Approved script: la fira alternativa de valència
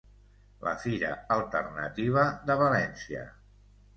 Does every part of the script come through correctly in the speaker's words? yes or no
yes